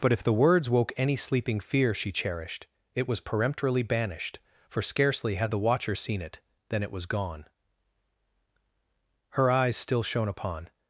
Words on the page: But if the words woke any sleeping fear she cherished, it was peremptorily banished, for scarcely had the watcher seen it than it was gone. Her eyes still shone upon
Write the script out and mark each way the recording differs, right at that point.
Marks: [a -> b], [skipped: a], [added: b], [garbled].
But if the words woke any sleeping fear she cherished, it was peremptorily banished, for scarcely had the watcher seen it than it was gone. Her eyes still shone upon